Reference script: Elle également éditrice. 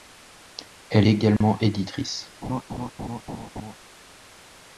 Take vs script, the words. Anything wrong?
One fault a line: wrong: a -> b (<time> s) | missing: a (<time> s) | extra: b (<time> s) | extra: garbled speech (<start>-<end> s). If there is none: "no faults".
no faults